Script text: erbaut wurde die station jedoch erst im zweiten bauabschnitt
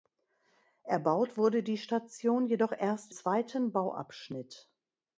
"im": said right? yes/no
no